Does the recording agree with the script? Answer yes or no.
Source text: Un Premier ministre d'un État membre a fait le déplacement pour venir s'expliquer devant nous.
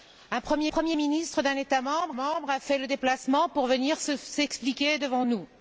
no